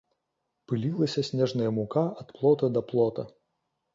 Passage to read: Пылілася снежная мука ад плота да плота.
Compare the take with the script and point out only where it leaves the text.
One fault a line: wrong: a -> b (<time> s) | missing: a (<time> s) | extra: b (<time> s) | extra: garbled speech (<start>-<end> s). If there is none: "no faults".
no faults